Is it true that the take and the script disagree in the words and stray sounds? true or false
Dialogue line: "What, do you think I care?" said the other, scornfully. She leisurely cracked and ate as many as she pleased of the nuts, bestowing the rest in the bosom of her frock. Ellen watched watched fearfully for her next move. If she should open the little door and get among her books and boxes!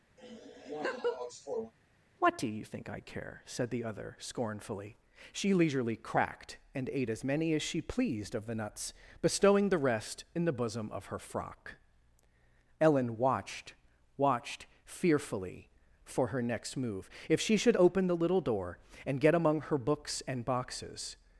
true